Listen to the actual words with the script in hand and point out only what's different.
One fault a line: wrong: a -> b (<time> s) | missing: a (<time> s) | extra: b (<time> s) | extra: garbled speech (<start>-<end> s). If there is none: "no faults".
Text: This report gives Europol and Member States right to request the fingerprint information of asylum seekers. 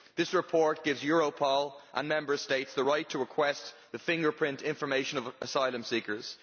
extra: the (2.7 s)